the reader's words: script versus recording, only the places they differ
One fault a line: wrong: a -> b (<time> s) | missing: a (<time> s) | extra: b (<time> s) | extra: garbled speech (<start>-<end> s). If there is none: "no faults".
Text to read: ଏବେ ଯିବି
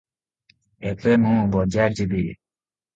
extra: ମୁଁ ବଜାର (1.2 s)